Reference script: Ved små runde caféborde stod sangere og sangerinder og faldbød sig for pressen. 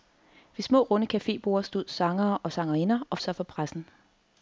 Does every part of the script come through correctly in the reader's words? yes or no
no